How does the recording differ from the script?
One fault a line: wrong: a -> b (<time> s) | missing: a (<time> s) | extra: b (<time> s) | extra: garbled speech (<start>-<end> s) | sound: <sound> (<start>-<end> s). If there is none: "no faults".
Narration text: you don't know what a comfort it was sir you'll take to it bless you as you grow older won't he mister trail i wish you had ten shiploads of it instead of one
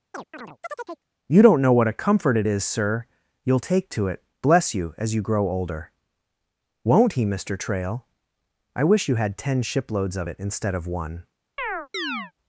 sound: chirp (0.1-1.1 s)
wrong: was -> is (2.5 s)
sound: chirp (11.6-12.3 s)